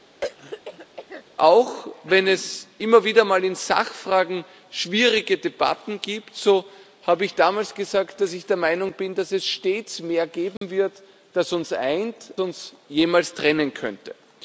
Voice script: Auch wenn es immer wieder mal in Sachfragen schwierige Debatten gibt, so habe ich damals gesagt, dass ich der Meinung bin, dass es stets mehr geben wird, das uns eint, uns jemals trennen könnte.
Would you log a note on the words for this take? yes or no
no